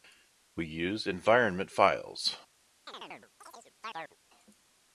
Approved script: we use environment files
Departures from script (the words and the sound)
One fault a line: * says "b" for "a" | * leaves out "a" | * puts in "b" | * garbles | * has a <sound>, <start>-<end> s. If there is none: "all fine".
* has a chirp, 2.9-4.2 s